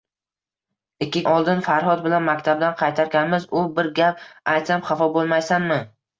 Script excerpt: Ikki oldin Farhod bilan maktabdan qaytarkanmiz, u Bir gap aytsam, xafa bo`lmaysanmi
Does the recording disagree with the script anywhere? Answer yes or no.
no